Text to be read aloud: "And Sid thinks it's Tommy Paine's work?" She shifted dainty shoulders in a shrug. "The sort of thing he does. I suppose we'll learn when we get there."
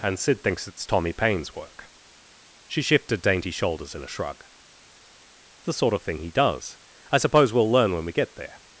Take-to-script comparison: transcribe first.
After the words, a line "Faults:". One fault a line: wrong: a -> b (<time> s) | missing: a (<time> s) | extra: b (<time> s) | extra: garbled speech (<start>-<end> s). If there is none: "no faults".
"And Sid thinks it's Tommy Paine's work?" She shifted dainty shoulders in a shrug. "The sort of thing he does. I suppose we'll learn when we get there."
Faults:
no faults